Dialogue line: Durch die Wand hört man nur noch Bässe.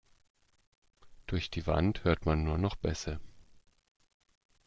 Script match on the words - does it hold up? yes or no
yes